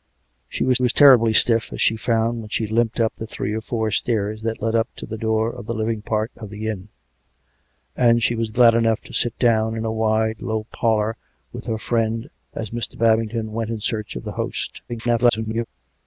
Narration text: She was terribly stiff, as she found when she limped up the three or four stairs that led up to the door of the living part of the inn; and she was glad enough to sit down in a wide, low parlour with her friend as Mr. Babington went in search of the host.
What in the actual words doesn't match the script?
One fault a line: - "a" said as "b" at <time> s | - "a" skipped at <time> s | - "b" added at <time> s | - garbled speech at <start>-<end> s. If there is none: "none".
- "was" added at 0.8 s
- garbled speech at 14.9-15.7 s